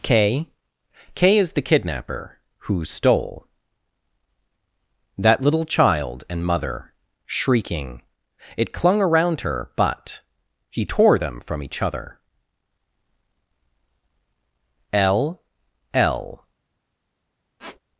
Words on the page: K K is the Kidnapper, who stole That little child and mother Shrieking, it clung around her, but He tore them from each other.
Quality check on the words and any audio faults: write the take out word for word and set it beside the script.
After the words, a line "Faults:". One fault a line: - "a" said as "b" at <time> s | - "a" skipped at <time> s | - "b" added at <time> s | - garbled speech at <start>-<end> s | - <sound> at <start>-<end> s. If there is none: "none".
K K is the Kidnapper, who stole That little child and mother Shrieking, it clung around her, but He tore them from each other. L L
Faults:
- "L L" added at 14.9 s
- squeak at 17.6-17.8 s